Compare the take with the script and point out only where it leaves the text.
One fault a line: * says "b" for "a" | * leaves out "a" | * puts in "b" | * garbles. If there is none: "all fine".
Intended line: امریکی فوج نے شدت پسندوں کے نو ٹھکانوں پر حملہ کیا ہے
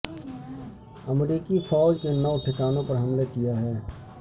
* leaves out "نے شدت پسندوں"